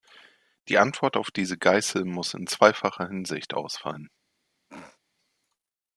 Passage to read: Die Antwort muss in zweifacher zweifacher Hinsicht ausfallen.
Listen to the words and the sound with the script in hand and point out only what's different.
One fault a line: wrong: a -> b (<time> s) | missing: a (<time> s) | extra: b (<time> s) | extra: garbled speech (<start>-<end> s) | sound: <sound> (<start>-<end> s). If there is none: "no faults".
extra: auf diese Geißel (1.1 s)
missing: zweifacher (3.1 s)
sound: throat clearing (4.7-5.0 s)